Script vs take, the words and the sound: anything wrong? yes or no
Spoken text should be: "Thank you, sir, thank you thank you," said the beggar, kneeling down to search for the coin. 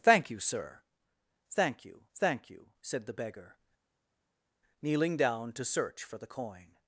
no